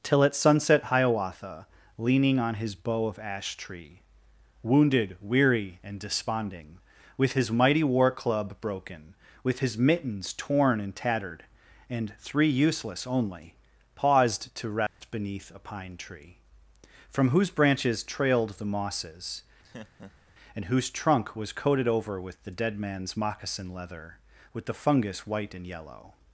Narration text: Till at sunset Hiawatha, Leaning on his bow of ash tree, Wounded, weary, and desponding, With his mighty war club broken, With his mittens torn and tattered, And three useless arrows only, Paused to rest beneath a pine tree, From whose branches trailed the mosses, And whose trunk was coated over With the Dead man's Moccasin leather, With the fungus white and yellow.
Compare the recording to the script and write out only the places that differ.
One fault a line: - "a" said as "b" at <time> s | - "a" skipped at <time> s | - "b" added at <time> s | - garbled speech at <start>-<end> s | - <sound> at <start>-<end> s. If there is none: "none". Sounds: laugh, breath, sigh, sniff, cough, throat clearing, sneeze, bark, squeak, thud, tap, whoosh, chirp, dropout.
- "arrows" skipped at 13.1 s
- dropout at 14.9-15.0 s
- laugh at 19.6-20.3 s